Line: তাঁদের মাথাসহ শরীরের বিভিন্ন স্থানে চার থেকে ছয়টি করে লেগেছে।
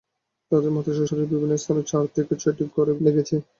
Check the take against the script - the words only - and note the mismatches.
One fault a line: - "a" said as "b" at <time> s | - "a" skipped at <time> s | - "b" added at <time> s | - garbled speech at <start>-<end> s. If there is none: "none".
none